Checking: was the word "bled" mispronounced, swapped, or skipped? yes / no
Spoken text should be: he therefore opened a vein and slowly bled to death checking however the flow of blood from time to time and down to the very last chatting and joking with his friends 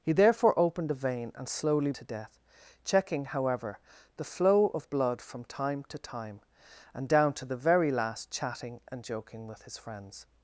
yes